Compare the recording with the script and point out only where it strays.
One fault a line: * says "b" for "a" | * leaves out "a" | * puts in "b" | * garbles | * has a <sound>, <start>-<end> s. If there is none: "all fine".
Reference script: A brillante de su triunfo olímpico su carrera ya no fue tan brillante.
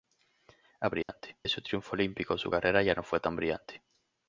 * has a dropout, 1.0-1.1 s